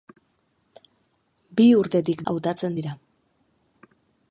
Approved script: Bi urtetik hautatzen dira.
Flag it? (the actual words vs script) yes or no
no